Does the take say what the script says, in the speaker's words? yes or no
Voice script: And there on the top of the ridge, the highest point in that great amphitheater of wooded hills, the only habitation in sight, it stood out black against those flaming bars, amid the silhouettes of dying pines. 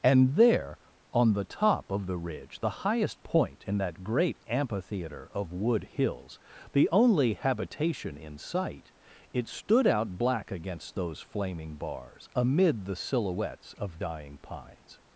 no